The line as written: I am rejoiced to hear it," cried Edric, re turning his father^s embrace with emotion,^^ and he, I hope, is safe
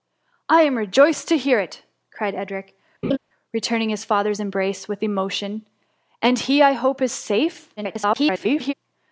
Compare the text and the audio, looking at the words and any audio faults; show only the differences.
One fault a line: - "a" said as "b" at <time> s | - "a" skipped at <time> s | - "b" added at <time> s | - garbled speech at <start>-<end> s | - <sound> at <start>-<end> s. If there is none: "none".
- laugh at 3.0-3.2 s
- garbled speech at 7.8-8.7 s